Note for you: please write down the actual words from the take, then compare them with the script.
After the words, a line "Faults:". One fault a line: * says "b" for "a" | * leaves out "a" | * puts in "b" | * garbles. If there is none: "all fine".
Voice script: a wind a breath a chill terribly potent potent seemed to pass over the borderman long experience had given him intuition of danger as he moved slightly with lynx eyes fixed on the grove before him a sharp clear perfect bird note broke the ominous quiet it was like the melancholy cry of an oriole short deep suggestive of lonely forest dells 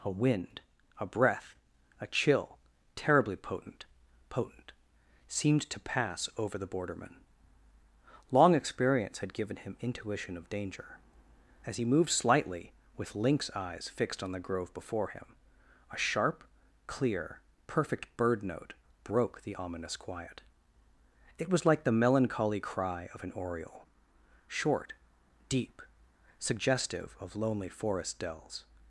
a wind a breath a chill terribly potent potent seemed to pass over the borderman long experience had given him intuition of danger as he moved slightly with lynx eyes fixed on the grove before him a sharp clear perfect bird note broke the ominous quiet it was like the melancholy cry of an oriole short deep suggestive of lonely forest dells
Faults:
all fine